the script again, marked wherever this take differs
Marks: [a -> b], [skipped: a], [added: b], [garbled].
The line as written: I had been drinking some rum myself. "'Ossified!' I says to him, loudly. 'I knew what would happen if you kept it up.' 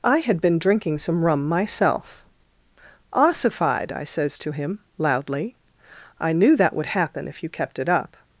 I had been drinking some rum myself. "'Ossified!' I says to him, loudly. 'I knew [what -> that] would happen if you kept it up.'